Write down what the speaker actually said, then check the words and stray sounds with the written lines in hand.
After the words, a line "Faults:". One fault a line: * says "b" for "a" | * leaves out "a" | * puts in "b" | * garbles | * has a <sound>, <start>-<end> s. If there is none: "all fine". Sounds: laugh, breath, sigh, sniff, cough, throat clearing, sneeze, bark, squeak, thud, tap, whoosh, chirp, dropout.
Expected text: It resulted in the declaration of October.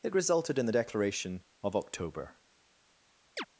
It resulted in the declaration of October.
Faults:
* has a chirp, 3.4-3.5 s